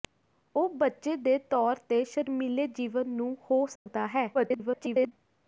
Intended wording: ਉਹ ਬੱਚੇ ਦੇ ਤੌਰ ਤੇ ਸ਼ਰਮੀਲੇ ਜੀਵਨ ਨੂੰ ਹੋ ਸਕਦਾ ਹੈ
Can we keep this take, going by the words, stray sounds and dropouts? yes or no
no